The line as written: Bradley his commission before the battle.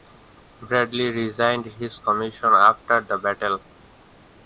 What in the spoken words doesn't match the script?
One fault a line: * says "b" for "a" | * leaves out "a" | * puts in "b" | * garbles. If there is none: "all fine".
* puts in "resigned"
* says "after" for "before"